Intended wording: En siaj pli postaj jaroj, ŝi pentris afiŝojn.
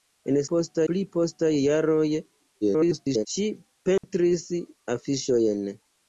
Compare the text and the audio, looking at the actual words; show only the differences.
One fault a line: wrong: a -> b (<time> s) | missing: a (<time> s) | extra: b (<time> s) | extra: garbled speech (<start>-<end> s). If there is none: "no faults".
wrong: siaj -> postaj (0.5 s)
extra: garbled speech (2.6-3.3 s)